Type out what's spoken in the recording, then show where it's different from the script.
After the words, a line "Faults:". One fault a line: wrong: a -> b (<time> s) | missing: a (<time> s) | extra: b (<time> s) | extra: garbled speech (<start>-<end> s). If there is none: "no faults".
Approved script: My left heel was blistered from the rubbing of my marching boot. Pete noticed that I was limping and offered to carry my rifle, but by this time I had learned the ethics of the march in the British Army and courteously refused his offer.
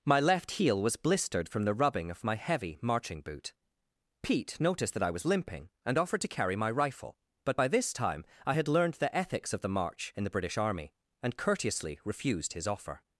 My left heel was blistered from the rubbing of my heavy marching boot. Pete noticed that I was limping and offered to carry my rifle, but by this time I had learned the ethics of the march in the British Army and courteously refused his offer.
Faults:
extra: heavy (2.3 s)